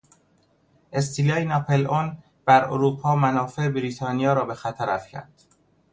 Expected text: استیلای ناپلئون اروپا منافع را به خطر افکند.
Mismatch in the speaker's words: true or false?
true